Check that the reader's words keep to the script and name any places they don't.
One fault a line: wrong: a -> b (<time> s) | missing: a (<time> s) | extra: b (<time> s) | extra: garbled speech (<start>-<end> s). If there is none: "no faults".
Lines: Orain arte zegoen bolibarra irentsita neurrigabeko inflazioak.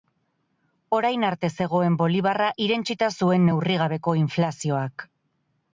extra: zuen (3.2 s)